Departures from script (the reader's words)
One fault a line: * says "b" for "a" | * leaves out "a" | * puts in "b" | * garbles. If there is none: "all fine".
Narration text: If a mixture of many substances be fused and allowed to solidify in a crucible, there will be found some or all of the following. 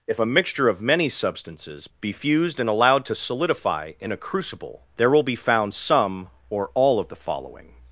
all fine